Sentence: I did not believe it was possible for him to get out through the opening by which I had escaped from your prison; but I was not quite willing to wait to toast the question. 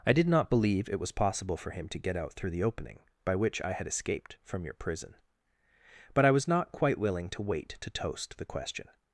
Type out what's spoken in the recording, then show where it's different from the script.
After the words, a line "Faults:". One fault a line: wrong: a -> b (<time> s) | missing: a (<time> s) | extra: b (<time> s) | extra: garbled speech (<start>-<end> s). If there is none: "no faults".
I did not believe it was possible for him to get out through the opening by which I had escaped from your prison; but I was not quite willing to wait to toast the question.
Faults:
no faults